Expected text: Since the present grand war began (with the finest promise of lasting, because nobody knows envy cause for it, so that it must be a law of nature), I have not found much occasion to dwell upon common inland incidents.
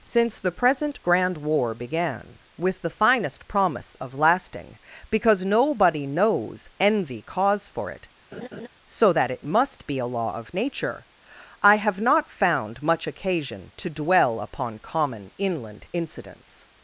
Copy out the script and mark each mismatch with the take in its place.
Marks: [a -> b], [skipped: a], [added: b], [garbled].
Since the present grand war began (with the finest promise of lasting, because nobody knows envy cause for it, so that it must be a law of nature), I have not found much occasion to dwell upon common inland incidents.